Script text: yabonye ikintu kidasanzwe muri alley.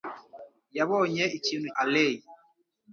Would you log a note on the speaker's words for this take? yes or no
yes